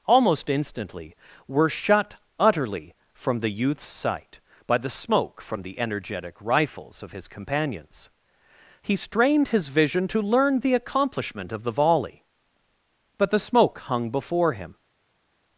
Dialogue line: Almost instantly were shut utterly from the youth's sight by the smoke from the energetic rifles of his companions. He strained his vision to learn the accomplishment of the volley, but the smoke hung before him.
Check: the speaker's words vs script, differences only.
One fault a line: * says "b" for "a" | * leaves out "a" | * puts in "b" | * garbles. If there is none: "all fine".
all fine